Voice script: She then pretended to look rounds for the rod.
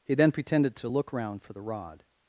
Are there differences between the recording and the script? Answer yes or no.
yes